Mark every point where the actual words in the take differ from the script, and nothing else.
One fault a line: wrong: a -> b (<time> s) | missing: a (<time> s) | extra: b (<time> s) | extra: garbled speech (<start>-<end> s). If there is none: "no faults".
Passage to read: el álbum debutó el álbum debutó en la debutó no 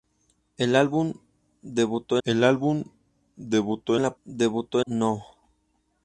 no faults